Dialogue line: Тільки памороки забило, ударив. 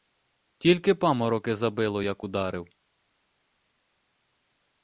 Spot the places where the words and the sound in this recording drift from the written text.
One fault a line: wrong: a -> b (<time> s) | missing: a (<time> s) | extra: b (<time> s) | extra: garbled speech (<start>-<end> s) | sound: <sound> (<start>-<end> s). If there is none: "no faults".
extra: як (2.0 s)